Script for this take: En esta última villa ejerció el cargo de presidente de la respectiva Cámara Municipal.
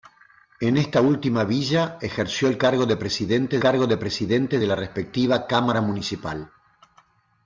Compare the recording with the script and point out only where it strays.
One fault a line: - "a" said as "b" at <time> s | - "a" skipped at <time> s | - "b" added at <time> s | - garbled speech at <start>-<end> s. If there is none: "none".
- "cargo de presidente" added at 3.6 s